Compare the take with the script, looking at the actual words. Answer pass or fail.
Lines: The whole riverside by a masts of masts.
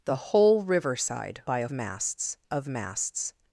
pass